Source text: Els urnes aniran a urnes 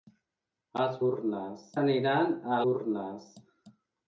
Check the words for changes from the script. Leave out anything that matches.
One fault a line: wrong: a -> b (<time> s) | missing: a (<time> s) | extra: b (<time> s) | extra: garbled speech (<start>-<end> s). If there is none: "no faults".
no faults